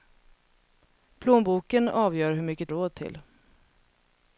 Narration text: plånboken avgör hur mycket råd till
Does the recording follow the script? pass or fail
pass